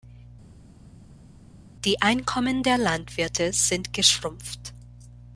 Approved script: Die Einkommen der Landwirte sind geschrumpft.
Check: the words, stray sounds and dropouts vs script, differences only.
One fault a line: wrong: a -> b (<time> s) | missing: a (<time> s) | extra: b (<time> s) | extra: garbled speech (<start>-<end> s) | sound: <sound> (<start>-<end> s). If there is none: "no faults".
no faults